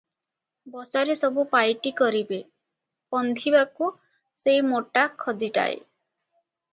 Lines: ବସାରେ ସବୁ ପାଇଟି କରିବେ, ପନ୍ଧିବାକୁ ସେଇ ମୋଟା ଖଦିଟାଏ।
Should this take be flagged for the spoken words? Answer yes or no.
no